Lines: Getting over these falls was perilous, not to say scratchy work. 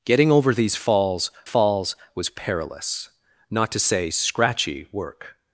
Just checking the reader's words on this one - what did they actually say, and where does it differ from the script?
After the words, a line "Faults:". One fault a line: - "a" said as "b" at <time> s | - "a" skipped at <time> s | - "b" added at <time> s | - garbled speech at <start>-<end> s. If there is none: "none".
Getting over these falls falls was perilous, not to say scratchy work.
Faults:
- "falls" added at 1.4 s